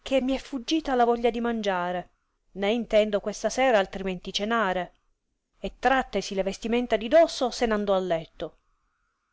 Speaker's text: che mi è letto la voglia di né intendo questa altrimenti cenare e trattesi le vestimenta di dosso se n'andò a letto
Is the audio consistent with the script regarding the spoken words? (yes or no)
no